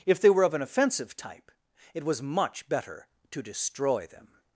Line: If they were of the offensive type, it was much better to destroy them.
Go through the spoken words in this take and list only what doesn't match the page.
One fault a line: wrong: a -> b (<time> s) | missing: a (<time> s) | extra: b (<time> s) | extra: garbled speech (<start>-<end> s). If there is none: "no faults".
wrong: the -> an (0.5 s)